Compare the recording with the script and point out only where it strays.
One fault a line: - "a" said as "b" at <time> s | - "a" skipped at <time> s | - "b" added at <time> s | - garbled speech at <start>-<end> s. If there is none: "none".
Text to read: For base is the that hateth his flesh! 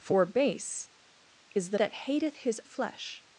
none